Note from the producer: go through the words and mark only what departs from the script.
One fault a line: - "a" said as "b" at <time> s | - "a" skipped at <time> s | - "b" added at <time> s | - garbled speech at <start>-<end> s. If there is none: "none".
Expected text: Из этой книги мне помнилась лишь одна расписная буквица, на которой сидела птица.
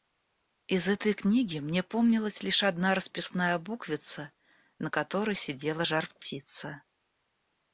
- "жар" added at 5.8 s